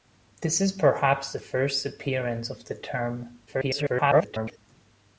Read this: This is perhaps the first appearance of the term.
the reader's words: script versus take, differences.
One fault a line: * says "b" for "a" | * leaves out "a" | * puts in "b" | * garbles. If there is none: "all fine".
* garbles